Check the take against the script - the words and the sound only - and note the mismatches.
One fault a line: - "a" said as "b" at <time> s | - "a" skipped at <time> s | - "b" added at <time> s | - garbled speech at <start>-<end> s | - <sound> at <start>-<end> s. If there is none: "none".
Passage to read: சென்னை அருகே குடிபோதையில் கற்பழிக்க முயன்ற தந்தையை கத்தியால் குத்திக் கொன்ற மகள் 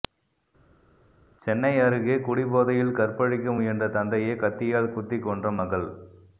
none